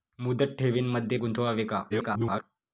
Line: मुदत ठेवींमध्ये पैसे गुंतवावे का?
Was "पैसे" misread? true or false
true